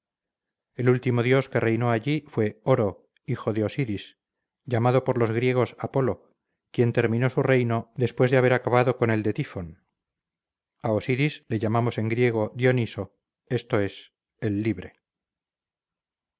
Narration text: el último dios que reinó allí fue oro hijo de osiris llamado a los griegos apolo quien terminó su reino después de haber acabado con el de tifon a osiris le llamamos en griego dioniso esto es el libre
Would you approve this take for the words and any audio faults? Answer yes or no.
no